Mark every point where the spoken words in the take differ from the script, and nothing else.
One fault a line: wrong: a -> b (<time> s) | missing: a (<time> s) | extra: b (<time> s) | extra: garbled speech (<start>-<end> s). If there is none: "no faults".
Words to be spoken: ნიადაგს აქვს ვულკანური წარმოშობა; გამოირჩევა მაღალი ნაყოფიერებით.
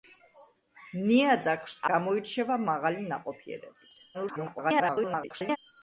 missing: აქვს ვულკანური წარმოშობა (1.8 s)
extra: garbled speech (4.1-5.6 s)